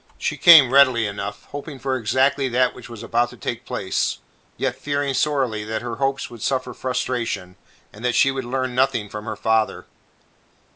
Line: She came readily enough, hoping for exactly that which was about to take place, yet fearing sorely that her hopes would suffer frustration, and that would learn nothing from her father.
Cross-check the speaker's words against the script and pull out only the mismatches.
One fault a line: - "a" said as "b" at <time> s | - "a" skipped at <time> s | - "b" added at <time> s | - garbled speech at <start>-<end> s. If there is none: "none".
- "she" added at 8.2 s